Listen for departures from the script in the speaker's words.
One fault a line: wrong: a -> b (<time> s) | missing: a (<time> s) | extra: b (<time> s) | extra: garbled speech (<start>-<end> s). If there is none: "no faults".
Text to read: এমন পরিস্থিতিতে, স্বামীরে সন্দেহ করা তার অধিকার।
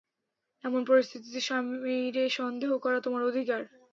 wrong: তার -> তোমার (3.0 s)